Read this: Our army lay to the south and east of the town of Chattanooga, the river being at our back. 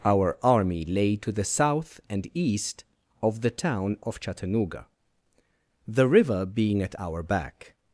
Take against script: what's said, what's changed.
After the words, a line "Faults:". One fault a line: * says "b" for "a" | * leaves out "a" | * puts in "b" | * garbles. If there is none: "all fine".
Our army lay to the south and east of the town of Chattanooga, the river being at our back.
Faults:
all fine